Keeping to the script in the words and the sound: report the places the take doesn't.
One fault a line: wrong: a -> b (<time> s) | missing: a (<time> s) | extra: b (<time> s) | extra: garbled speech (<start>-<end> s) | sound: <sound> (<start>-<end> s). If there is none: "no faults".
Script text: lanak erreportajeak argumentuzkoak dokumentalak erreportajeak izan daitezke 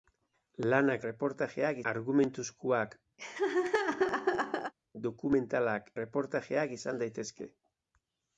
sound: laugh (3.2-4.7 s)